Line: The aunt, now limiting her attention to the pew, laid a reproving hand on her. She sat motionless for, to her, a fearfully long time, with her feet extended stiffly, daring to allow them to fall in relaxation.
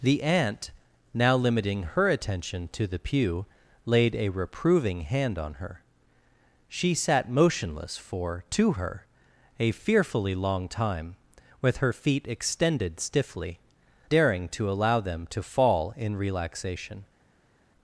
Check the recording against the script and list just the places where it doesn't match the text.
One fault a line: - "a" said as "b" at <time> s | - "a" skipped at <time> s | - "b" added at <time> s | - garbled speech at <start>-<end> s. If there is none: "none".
none